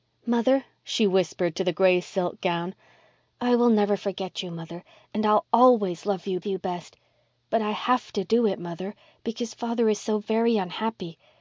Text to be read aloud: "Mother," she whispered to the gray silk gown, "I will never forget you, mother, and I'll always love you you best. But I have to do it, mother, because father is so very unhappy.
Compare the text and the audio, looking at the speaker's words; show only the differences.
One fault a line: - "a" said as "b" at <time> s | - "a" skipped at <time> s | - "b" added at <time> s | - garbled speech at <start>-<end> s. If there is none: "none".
none